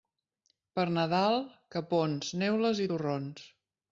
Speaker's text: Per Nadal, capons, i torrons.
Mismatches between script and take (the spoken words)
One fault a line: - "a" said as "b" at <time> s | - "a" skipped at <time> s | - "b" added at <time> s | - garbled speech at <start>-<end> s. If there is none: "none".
- "neules" added at 2.5 s